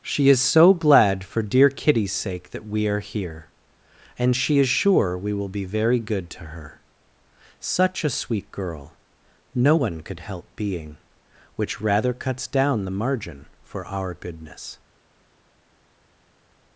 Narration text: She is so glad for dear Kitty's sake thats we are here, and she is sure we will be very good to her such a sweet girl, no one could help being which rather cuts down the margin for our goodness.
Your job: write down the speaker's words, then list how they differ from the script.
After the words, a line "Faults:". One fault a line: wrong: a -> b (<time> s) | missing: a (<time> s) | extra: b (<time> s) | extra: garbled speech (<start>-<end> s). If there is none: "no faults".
She is so glad for dear Kitty's sake that we are here, and she is sure we will be very good to her such a sweet girl, no one could help being which rather cuts down the margin for our goodness.
Faults:
wrong: thats -> that (2.5 s)